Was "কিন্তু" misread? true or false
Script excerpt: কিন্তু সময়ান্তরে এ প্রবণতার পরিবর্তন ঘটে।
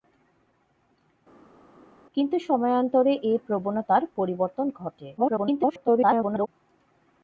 false